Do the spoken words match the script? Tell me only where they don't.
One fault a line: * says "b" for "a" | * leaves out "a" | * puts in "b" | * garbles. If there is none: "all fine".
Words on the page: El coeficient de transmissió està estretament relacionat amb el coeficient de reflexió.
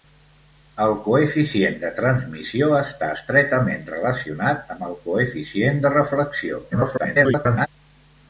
* garbles